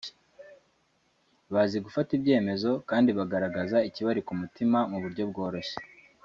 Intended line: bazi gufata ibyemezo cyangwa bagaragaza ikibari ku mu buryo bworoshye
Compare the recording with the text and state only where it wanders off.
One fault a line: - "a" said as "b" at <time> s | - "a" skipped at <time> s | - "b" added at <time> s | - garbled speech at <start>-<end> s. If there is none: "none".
- "cyangwa" said as "kandi" at 2.9 s
- "mutima" added at 4.4 s